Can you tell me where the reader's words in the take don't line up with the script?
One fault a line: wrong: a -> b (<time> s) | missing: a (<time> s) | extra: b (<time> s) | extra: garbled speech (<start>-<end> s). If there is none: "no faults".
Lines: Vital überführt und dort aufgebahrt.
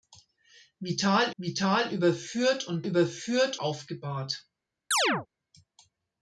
extra: vital (1.4 s)
wrong: dort -> überführt (2.9 s)